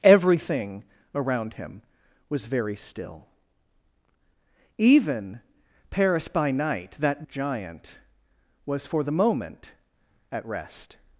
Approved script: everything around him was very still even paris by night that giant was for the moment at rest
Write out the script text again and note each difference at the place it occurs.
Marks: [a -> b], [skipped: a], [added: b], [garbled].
everything around him was very still even paris by night that giant was for the moment at rest